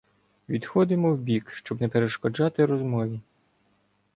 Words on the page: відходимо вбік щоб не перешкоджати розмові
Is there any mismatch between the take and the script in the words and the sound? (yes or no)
no